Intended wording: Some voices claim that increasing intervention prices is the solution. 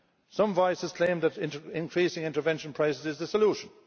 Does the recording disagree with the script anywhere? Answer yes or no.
no